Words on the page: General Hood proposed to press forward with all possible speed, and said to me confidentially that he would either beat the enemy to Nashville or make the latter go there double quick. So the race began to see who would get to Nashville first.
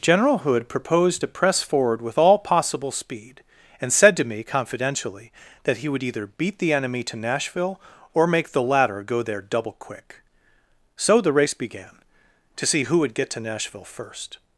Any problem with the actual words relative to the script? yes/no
no